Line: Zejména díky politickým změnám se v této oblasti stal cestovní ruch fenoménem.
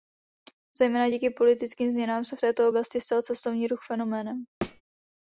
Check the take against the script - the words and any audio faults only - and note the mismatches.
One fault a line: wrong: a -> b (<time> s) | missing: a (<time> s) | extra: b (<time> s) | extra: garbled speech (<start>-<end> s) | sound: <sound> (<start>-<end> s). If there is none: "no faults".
sound: thud (4.6-4.8 s)